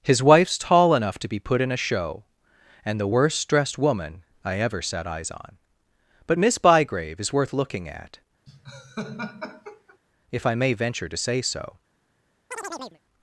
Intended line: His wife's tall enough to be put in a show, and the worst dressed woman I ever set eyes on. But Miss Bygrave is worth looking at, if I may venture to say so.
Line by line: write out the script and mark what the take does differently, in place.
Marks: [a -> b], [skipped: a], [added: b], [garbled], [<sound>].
His wife's tall enough to be put in a show, and the worst dressed woman I ever set eyes on. But Miss Bygrave is worth looking at, [laugh] if I may venture to say so. [chirp]